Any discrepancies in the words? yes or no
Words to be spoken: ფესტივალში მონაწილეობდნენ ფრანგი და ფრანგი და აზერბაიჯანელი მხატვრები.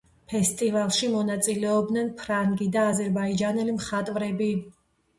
yes